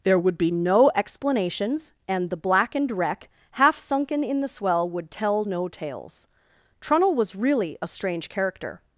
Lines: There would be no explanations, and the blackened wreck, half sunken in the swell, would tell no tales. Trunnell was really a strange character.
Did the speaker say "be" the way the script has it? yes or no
yes